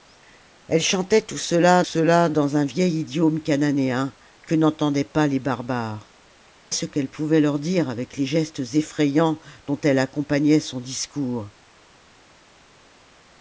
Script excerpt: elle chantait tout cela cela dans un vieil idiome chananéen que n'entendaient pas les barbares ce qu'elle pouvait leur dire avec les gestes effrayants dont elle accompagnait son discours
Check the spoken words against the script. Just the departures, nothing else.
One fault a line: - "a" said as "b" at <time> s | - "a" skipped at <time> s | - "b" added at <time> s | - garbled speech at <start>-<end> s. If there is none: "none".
none